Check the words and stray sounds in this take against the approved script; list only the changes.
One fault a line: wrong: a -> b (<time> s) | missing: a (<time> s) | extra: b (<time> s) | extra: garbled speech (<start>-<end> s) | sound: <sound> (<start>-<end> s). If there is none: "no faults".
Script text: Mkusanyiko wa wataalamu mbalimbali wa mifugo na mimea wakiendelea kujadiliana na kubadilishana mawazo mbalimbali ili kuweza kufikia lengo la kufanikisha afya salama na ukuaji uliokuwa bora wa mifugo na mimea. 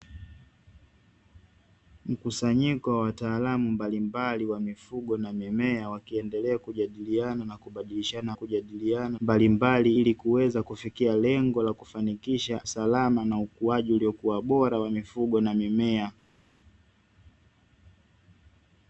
wrong: mawazo -> kujadiliana (8.3 s)
missing: afya (12.7 s)